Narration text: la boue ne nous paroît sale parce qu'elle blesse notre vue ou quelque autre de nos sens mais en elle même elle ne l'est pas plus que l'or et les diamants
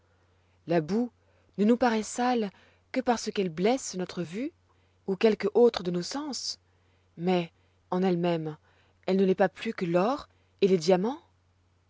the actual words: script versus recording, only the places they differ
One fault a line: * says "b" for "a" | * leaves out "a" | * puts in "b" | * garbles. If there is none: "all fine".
* puts in "que"